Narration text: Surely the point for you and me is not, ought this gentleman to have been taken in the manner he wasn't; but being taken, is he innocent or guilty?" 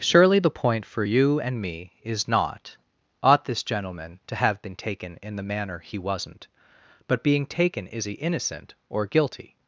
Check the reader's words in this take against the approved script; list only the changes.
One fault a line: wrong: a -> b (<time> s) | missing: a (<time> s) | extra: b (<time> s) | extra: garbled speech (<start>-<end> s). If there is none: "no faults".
no faults